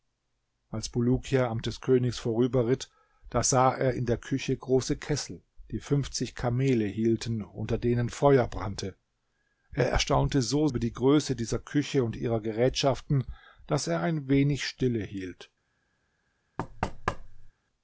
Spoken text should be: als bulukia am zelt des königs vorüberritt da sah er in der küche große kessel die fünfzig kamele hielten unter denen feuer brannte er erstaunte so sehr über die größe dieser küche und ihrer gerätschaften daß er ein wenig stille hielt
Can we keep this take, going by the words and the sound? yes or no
no